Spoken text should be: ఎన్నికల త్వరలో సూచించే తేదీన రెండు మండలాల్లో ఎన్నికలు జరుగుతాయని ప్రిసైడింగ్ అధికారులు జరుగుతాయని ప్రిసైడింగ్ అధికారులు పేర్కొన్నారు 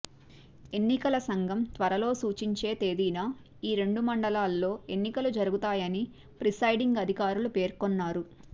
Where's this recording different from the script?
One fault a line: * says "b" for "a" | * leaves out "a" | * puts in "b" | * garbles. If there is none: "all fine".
* puts in "సంఘం"
* puts in "ఈ"
* leaves out "జరుగుతాయని ప్రిసైడింగ్ అధికారులు"